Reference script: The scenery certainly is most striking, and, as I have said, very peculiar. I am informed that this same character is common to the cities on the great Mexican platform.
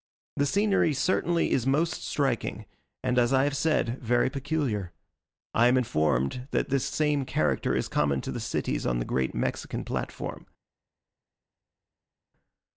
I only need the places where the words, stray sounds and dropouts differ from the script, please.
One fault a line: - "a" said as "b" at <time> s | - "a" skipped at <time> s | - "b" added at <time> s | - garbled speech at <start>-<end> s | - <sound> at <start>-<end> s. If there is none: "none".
none